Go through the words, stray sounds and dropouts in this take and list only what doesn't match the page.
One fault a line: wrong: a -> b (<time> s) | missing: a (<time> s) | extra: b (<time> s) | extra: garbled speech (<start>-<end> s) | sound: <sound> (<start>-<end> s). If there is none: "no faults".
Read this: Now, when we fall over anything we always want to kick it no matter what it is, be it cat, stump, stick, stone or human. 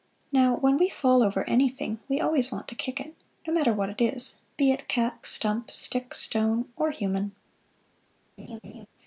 sound: laugh (8.4-8.9 s)